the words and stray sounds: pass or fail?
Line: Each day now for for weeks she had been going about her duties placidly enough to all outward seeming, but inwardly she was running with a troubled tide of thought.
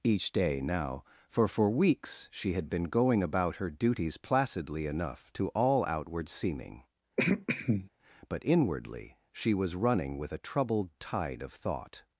fail